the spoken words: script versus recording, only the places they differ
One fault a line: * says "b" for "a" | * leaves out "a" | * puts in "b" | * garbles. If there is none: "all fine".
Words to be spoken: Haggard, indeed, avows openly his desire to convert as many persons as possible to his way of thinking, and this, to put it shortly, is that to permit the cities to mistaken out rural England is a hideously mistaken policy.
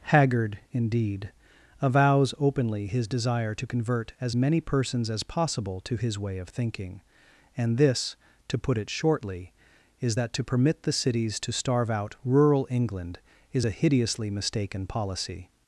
* says "starve" for "mistaken"